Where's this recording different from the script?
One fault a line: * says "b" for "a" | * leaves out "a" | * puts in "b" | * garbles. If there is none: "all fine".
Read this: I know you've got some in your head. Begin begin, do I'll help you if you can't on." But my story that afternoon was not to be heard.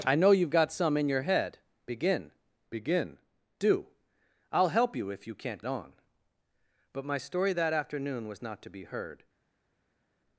all fine